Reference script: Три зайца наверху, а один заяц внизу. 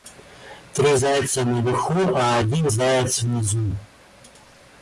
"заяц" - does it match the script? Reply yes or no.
yes